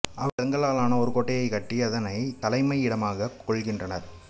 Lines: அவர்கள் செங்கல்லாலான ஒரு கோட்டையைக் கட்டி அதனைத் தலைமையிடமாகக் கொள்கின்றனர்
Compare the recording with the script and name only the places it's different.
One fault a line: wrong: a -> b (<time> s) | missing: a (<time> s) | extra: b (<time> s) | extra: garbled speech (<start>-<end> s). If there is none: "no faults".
no faults